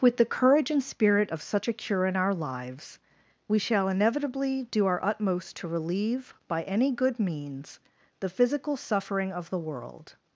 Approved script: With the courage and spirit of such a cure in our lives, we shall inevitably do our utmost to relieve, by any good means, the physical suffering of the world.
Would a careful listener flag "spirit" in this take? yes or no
no